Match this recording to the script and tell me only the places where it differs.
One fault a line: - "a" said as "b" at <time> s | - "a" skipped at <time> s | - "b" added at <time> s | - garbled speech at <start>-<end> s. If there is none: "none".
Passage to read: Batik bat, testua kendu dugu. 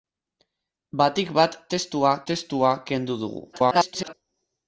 - "testua" added at 2.3 s
- garbled speech at 3.5-4.1 s